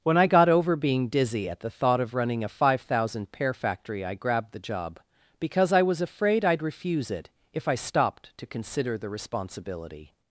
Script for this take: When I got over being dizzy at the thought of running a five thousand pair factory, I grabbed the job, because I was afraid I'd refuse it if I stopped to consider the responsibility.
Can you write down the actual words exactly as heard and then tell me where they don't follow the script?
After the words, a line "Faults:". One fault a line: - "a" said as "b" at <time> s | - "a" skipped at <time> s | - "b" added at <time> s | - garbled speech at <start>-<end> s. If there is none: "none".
When I got over being dizzy at the thought of running a five thousand pair factory, I grabbed the job, because I was afraid I'd refuse it if I stopped to consider the responsibility.
Faults:
none